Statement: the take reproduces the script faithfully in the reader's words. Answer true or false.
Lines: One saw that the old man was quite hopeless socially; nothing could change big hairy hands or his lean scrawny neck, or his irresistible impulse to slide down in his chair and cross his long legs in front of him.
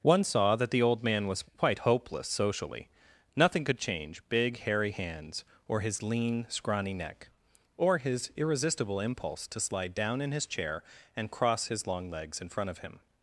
true